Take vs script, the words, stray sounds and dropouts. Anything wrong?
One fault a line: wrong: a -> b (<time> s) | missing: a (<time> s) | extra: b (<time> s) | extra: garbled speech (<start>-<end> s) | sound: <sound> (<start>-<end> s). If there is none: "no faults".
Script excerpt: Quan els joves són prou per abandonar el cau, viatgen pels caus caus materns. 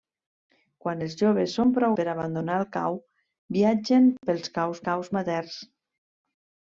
no faults